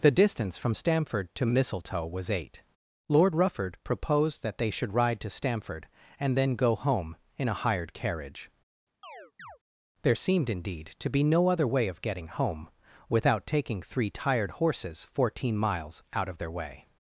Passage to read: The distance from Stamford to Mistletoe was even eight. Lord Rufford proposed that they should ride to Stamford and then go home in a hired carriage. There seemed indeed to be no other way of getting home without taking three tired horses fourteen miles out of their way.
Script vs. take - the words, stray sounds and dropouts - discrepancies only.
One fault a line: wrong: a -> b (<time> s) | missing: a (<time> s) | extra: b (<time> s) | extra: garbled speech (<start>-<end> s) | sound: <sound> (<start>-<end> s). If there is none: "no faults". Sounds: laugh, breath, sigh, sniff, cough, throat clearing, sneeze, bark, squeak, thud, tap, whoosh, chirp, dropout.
missing: even (2.3 s)
sound: chirp (9.0-9.6 s)